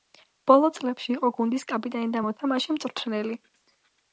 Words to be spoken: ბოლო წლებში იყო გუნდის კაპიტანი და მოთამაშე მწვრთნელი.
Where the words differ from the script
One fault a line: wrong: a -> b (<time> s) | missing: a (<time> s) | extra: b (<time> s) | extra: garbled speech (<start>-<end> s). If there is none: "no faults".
no faults